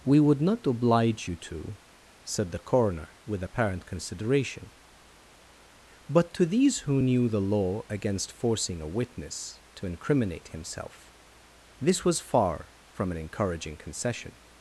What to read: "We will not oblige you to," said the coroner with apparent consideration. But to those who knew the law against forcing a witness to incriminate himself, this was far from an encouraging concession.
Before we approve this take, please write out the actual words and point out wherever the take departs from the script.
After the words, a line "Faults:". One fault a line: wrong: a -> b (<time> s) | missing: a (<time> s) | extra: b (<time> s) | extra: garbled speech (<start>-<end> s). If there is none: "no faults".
"We would not oblige you to," said the coroner with apparent consideration. But to these who knew the law against forcing a witness to incriminate himself, this was far from an encouraging concession.
Faults:
wrong: will -> would (0.2 s)
wrong: those -> these (6.5 s)